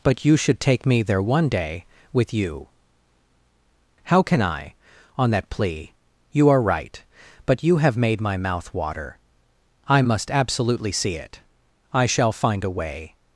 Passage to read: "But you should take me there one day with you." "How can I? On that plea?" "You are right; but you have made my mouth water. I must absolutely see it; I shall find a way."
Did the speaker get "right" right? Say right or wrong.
right